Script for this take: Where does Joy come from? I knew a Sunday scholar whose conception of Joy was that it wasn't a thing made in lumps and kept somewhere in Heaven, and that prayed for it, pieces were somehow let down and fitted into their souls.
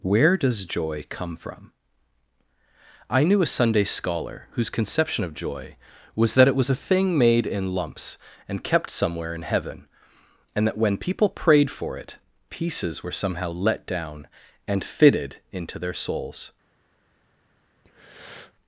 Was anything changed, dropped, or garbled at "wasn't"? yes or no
yes